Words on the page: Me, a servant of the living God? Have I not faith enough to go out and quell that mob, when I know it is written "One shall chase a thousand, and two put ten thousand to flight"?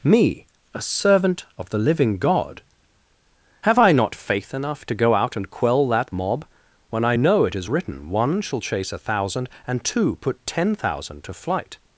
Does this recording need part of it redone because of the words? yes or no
no